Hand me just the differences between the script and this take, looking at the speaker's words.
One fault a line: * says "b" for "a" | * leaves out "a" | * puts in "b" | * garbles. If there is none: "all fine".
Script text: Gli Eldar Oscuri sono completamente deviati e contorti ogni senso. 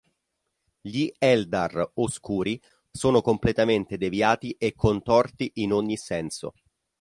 * puts in "in"